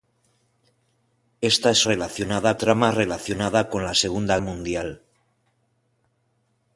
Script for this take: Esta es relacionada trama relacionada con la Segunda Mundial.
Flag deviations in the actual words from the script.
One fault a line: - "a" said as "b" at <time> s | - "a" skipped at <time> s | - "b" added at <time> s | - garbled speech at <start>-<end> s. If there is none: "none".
none